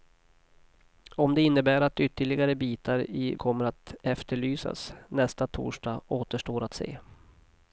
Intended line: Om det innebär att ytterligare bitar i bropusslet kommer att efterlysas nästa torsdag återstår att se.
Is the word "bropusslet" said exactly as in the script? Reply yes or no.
no